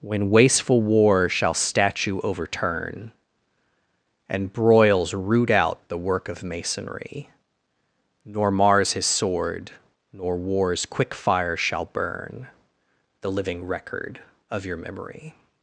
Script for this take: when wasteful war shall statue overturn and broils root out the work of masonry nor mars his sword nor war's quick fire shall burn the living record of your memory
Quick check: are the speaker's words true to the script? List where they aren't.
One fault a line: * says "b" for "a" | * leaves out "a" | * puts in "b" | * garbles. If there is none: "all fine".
all fine